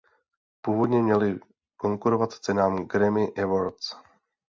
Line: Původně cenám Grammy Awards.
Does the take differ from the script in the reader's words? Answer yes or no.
yes